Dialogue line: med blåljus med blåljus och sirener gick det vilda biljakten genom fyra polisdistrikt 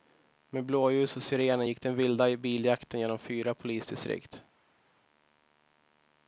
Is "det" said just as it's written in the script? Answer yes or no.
no